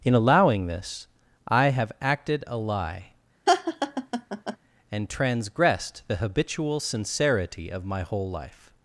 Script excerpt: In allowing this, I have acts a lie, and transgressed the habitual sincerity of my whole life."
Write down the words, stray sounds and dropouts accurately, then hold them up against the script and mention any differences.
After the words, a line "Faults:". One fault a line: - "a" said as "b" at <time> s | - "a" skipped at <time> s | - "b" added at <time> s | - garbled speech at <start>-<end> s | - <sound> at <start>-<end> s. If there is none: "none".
In allowing this, I have acted a lie, and transgressed the habitual sincerity of my whole life."
Faults:
- "acts" said as "acted" at 2.0 s
- laugh at 3.5-4.6 s